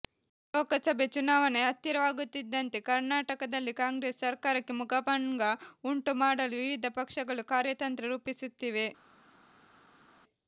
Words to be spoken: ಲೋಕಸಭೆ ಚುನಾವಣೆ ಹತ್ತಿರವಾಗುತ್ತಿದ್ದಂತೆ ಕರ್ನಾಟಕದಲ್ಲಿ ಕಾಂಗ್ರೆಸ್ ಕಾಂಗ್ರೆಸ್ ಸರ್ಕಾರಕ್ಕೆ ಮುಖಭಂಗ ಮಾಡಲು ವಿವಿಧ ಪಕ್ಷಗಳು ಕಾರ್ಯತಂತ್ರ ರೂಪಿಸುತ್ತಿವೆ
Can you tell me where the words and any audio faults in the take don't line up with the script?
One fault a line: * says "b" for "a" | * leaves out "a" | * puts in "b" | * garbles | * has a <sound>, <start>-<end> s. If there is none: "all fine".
* leaves out "ಕಾಂಗ್ರೆಸ್"
* puts in "ಉಂಟು"